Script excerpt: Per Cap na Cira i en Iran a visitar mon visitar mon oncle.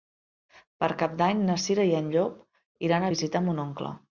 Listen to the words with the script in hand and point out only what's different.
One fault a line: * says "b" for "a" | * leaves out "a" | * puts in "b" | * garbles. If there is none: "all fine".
* puts in "d'Any"
* puts in "Llop"
* leaves out "visitar mon"